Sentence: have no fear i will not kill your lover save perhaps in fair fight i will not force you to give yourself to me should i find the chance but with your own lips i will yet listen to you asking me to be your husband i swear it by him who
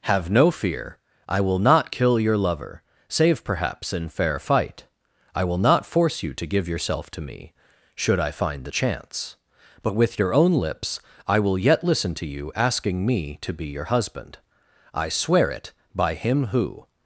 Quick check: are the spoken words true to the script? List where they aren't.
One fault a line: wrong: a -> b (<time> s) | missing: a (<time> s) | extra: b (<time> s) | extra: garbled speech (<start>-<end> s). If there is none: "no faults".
no faults